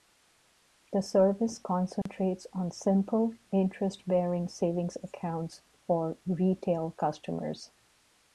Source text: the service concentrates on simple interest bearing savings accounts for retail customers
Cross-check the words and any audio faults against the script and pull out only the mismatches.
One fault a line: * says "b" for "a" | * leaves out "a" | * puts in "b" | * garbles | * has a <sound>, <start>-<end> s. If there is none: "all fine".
* has a dropout, 2.0-2.1 s